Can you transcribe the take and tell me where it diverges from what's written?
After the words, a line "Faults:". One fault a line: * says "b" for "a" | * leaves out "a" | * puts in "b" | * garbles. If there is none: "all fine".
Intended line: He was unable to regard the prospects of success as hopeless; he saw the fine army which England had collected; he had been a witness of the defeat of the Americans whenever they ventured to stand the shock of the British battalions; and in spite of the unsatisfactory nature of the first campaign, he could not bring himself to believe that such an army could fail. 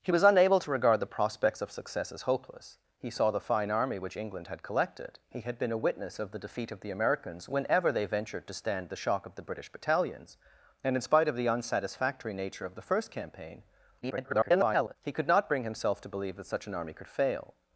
He was unable to regard the prospects of success as hopeless; he saw the fine army which England had collected; he had been a witness of the defeat of the Americans whenever they ventured to stand the shock of the British battalions; and in spite of the unsatisfactory nature of the first campaign, [garbled] he could not bring himself to believe that such an army could fail.
Faults:
* garbles